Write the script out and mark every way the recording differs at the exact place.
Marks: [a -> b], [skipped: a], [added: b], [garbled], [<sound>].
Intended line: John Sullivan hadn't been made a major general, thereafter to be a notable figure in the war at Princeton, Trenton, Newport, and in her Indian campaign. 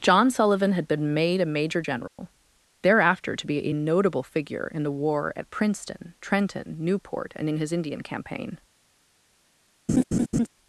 John Sullivan [hadn't -> had] been made a major general, [dropout] thereafter to be a notable figure in the war at Princeton, Trenton, Newport, and in [her -> his] Indian campaign. [laugh]